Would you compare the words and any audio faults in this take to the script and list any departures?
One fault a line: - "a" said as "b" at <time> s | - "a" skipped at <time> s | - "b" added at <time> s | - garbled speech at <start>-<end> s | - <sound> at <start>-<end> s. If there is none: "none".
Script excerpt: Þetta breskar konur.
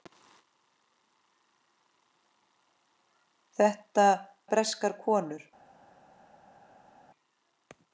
none